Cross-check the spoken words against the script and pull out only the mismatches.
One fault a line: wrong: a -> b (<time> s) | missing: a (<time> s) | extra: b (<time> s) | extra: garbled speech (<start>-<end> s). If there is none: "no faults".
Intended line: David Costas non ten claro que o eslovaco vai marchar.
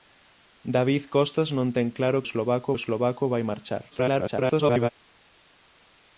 wrong: que -> eslovaco (2.3 s)
extra: garbled speech (3.9-4.9 s)